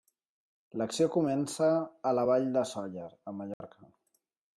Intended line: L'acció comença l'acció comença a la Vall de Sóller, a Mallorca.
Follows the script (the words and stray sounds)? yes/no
no